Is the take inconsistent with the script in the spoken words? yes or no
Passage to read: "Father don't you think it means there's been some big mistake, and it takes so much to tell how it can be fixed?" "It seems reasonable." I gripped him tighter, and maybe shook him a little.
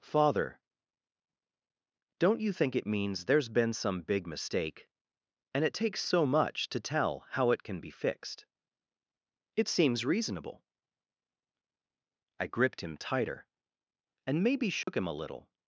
no